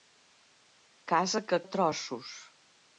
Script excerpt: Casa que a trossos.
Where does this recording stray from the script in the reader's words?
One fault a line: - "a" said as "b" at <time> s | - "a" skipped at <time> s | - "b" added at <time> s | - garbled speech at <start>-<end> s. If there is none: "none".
none